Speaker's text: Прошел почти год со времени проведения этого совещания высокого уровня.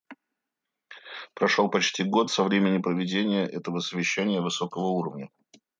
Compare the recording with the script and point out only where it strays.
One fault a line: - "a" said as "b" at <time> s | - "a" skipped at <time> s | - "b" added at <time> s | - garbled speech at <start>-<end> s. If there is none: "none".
none